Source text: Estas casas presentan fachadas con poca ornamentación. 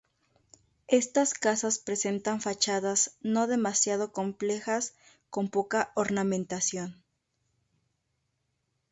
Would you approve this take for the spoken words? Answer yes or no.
no